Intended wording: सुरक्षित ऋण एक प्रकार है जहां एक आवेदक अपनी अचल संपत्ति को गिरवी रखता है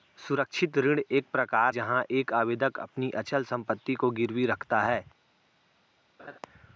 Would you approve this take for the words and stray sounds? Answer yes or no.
no